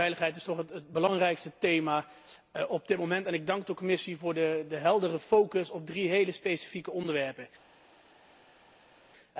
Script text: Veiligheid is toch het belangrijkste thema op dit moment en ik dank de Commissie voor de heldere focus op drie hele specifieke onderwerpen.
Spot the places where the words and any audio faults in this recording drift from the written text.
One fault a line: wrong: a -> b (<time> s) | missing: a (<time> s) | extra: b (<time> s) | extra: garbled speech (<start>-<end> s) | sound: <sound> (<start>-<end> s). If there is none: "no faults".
no faults